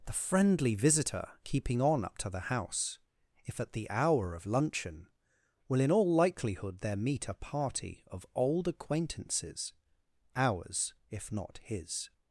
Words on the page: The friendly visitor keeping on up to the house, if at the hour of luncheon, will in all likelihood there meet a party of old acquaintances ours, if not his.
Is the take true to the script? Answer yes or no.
yes